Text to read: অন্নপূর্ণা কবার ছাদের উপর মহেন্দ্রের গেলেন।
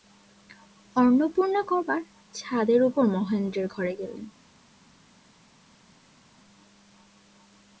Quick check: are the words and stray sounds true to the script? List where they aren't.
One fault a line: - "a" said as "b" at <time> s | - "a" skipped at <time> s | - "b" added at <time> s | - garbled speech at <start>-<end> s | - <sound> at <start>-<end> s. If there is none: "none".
- "ঘরে" added at 3.7 s